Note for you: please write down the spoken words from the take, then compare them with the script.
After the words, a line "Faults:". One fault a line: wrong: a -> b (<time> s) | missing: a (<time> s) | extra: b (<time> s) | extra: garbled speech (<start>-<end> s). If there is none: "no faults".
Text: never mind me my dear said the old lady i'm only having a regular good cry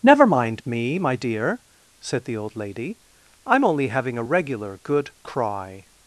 never mind me my dear said the old lady i'm only having a regular good cry
Faults:
no faults